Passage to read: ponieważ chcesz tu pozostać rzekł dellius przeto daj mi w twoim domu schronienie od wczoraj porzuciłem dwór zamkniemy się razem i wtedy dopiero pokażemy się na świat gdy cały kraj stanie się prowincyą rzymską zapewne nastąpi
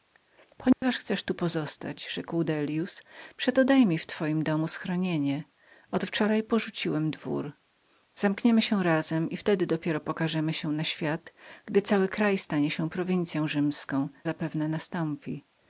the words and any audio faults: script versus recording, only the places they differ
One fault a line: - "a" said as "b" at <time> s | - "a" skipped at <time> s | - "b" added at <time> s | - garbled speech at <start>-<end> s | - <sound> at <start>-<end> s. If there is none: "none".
- dropout at 0.7-0.8 s